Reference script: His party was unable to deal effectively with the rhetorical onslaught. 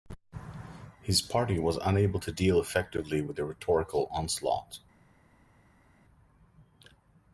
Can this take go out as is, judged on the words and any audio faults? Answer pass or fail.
pass